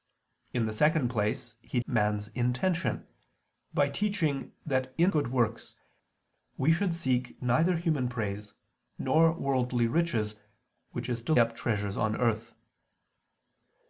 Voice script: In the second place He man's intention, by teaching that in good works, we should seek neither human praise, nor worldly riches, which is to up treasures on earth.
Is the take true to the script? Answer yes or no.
yes